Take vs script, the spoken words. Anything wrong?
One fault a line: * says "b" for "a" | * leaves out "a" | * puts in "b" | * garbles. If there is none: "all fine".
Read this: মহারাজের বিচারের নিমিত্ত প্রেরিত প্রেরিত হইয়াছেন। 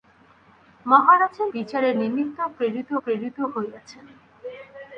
all fine